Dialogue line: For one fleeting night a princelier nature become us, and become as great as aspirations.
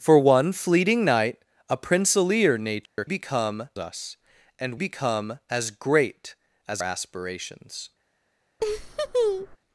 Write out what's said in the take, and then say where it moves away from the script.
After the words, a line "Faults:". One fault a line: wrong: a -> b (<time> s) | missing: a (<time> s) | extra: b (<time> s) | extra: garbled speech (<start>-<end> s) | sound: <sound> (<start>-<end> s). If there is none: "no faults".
For one fleeting night a princelier nature become us, and become as great as aspirations.
Faults:
sound: dropout (2.9-3.0 s)
sound: laugh (8.6-9.6 s)